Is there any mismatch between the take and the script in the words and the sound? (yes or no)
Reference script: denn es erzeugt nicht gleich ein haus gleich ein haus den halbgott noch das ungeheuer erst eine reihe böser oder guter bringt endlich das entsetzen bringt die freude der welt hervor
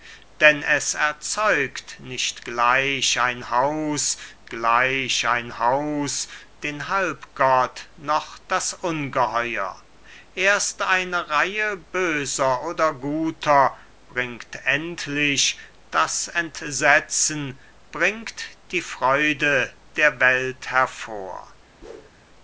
yes